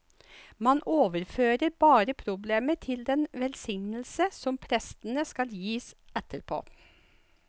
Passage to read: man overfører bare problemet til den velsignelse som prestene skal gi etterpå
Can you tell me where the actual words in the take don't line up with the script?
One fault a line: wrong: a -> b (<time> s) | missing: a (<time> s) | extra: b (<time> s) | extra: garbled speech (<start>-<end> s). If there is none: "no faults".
no faults